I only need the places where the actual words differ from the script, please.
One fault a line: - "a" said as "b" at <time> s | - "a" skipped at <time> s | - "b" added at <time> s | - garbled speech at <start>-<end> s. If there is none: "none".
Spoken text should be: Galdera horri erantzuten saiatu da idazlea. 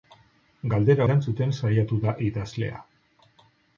- "horri" skipped at 1.1 s